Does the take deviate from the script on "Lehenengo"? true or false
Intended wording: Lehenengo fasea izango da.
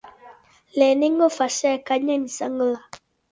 false